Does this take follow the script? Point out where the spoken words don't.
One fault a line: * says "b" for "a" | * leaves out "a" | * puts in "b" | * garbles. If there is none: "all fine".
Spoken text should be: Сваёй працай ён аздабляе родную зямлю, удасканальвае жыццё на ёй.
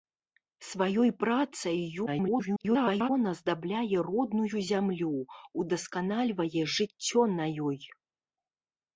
* garbles